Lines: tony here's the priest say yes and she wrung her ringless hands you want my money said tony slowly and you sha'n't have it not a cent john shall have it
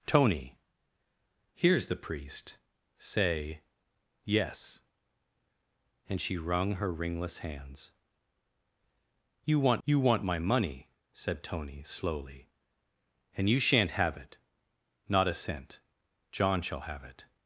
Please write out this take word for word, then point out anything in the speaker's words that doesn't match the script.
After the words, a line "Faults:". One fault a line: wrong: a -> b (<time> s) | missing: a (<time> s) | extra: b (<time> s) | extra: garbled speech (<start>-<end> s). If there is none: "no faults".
tony here's the priest say yes and she wrung her ringless hands you want you want my money said tony slowly and you sha'n't have it not a cent john shall have it
Faults:
extra: you want (9.8 s)